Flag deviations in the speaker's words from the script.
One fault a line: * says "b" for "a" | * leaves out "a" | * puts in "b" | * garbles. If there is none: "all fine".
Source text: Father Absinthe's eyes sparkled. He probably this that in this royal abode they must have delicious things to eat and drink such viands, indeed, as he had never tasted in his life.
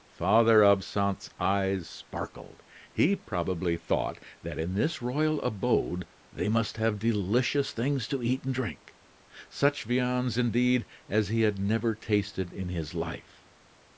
* says "thought" for "this"